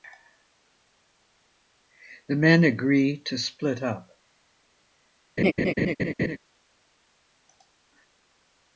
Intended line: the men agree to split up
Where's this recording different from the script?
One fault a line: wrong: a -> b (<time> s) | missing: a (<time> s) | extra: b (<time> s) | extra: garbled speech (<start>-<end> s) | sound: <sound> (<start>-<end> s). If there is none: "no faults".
sound: laugh (5.4-6.4 s)